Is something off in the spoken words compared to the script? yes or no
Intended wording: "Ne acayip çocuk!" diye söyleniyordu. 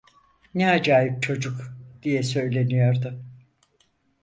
no